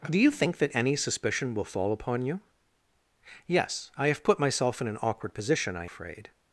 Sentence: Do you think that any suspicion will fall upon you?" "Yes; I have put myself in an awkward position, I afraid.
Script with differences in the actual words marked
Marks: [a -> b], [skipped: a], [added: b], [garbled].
Do you think that any suspicion will fall upon you?" "Yes; I have put myself in an awkward position, I afraid.